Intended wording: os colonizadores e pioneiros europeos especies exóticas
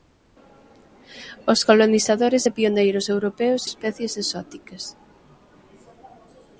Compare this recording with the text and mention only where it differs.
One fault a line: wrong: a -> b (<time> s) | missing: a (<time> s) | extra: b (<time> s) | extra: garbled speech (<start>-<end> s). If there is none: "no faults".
no faults